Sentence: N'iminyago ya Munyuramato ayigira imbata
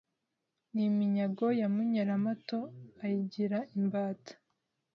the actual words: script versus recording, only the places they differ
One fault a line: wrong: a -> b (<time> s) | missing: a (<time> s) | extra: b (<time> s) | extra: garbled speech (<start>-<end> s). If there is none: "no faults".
no faults